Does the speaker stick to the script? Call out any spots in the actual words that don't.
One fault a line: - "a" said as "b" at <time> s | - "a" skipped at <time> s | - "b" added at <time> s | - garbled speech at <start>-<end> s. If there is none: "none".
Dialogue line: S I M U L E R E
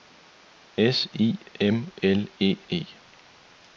- "U" skipped at 1.9 s
- "R" skipped at 2.6 s